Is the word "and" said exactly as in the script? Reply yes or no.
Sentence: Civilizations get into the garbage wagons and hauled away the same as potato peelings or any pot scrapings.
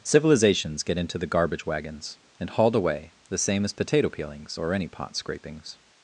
yes